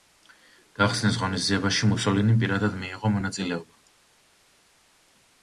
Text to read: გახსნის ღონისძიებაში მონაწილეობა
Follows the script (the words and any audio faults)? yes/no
no